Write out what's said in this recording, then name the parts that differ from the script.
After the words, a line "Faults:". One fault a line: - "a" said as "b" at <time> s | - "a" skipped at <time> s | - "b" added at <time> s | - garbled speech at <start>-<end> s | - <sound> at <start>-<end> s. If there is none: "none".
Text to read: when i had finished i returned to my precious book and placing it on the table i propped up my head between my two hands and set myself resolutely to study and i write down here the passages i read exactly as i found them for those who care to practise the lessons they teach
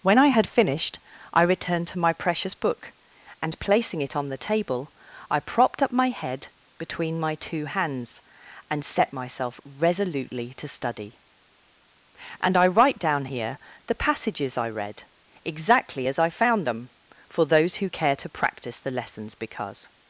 when i had finished i returned to my precious book and placing it on the table i propped up my head between my two hands and set myself resolutely to study and i write down here the passages i read exactly as i found them for those who care to practice the lessons because
Faults:
- "practise" said as "practice" at 18.3 s
- "they teach" said as "because" at 19.3 s